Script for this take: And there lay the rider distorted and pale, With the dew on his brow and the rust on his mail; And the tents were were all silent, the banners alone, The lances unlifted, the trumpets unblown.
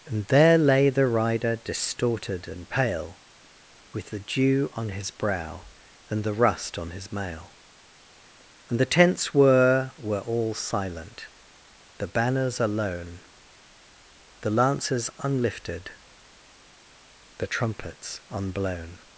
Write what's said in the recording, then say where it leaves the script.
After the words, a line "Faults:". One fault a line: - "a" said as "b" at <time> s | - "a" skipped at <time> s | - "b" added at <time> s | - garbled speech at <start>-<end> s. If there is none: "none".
And there lay the rider distorted and pale, With the dew on his brow and the rust on his mail; And the tents were were all silent, the banners alone, The lances unlifted, the trumpets unblown.
Faults:
none